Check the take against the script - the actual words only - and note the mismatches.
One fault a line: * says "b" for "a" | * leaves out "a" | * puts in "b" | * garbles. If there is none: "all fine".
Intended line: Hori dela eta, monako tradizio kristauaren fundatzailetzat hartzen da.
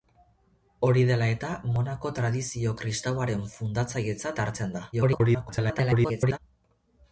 * garbles